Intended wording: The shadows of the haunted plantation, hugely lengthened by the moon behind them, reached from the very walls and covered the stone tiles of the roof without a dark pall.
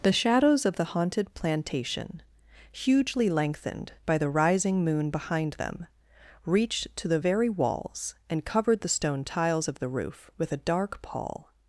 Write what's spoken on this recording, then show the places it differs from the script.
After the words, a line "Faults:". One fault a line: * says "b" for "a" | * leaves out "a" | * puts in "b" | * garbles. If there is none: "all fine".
The shadows of the haunted plantation, hugely lengthened by the rising moon behind them, reached to the very walls and covered the stone tiles of the roof with a dark pall.
Faults:
* puts in "rising"
* says "to" for "from"
* says "with" for "without"